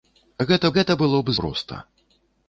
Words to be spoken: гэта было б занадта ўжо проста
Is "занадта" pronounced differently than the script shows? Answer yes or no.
yes